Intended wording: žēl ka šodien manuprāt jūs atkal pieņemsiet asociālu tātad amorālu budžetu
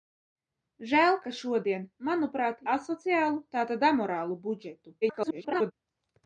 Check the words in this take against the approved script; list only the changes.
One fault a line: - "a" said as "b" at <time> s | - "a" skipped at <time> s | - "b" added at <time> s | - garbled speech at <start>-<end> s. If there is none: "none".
- "jūs atkal pieņemsiet" skipped at 2.6 s
- garbled speech at 5.0-5.7 s